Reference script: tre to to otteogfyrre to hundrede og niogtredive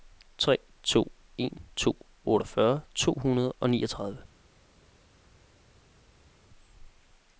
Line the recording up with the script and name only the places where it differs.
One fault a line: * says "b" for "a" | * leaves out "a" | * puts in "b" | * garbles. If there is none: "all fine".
* puts in "en"